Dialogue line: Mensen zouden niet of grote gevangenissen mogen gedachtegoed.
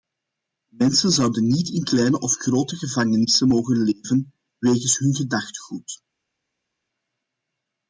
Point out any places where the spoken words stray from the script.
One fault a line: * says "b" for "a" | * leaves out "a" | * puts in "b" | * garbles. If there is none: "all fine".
* puts in "in kleine"
* puts in "leven wegens hun"